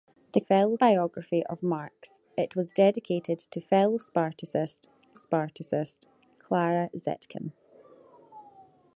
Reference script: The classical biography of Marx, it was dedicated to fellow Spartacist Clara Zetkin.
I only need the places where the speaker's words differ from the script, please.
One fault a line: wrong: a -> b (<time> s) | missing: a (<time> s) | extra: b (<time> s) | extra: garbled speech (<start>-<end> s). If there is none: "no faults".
wrong: classical -> fellow (0.4 s)
extra: Spartacist (5.1 s)